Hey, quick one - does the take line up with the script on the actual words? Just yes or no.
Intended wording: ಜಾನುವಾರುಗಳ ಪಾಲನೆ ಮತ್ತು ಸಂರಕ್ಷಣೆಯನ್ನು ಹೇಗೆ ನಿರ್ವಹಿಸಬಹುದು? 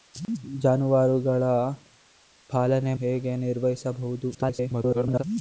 no